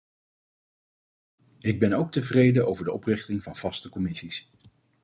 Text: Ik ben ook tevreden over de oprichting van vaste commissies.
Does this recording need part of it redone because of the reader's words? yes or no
no